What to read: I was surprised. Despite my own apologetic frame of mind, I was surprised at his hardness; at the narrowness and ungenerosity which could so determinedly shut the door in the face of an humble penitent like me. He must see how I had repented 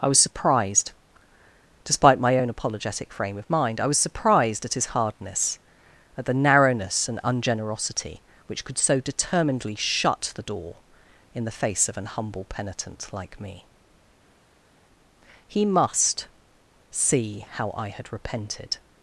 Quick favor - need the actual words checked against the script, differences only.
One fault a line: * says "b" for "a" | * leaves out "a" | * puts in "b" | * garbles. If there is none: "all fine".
all fine